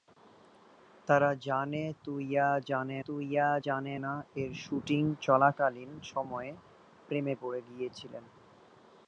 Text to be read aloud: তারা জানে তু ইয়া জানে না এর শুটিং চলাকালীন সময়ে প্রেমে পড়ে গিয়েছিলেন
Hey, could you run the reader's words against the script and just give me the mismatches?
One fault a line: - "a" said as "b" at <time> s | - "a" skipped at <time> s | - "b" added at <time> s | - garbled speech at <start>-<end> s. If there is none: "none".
- "তু ইয়া জানে" added at 3.0 s